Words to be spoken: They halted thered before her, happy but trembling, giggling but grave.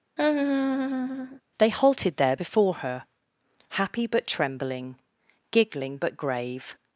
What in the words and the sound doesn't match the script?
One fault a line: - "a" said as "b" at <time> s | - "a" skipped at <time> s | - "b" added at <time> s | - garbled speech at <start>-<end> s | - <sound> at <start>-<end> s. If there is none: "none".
- laugh at 0.2-1.4 s
- "thered" said as "there" at 2.2 s